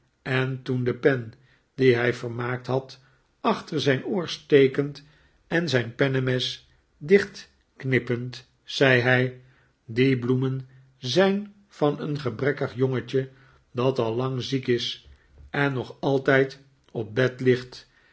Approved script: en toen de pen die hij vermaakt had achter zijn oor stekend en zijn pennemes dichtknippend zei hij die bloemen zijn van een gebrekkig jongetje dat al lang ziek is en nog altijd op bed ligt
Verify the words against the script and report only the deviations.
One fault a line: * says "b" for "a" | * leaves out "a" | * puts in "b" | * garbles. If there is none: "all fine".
all fine